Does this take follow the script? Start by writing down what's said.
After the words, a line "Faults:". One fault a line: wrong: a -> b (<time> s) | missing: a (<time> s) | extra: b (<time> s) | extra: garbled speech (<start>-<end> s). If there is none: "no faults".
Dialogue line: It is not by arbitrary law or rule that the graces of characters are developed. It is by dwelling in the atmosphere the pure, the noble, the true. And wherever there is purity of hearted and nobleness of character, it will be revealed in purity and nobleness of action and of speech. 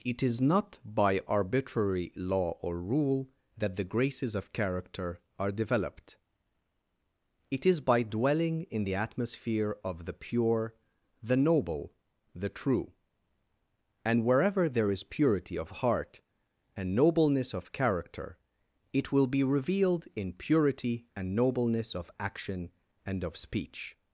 It is not by arbitrary law or rule that the graces of character are developed. It is by dwelling in the atmosphere of the pure, the noble, the true. And wherever there is purity of heart and nobleness of character, it will be revealed in purity and nobleness of action and of speech.
Faults:
wrong: characters -> character (4.5 s)
extra: of (9.8 s)
wrong: hearted -> heart (15.8 s)